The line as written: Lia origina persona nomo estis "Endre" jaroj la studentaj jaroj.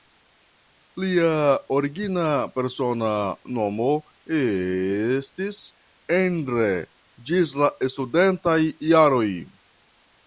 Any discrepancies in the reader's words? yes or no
yes